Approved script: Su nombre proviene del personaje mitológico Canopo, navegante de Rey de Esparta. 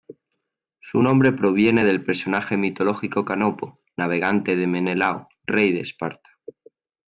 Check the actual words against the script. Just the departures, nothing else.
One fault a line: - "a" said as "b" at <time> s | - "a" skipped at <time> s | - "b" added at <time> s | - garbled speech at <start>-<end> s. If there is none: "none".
- "Menelao" added at 4.7 s